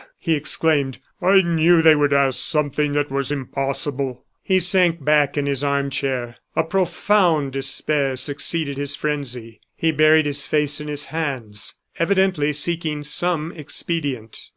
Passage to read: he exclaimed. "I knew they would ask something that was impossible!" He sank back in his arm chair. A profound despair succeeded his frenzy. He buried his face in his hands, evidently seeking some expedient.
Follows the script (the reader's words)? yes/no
yes